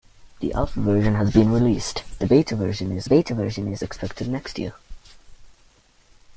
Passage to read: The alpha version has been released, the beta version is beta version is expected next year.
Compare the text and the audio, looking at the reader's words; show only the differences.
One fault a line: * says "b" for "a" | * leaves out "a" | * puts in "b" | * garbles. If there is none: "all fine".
all fine